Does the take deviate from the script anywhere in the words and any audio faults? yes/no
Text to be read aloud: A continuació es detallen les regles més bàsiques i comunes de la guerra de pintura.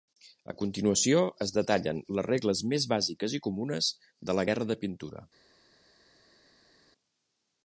no